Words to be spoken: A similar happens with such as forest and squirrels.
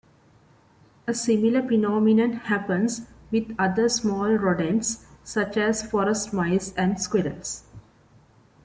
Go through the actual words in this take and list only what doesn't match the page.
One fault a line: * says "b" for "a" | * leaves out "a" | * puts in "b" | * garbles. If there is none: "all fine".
* puts in "phenomenon"
* puts in "other small rodents"
* puts in "mice"